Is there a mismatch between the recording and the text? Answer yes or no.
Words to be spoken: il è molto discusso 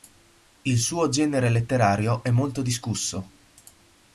yes